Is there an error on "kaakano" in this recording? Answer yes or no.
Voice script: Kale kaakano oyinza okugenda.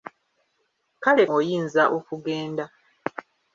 yes